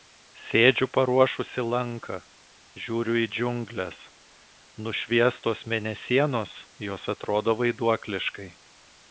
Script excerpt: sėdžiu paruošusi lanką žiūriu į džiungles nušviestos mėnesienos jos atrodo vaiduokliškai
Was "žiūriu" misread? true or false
false